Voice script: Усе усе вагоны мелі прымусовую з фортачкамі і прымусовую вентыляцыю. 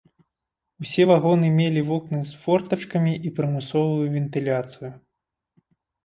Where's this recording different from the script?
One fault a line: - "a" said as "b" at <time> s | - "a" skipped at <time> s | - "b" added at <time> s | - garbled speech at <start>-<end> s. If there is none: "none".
- "усе" skipped at 1.0 s
- "прымусовую" said as "вокны" at 1.9 s